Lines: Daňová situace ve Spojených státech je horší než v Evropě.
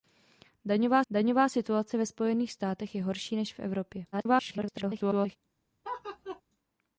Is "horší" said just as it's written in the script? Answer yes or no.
yes